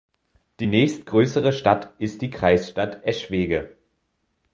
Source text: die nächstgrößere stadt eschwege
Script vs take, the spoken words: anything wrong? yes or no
yes